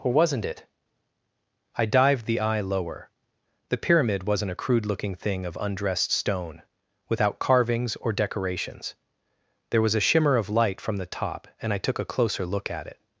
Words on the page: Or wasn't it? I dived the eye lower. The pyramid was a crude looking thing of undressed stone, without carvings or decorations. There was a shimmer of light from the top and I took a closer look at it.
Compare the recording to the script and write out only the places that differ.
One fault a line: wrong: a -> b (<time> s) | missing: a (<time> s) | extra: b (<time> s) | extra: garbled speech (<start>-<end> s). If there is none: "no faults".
wrong: was -> wasn't (4.2 s)